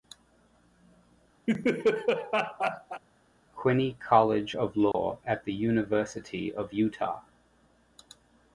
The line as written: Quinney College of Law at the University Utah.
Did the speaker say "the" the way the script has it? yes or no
yes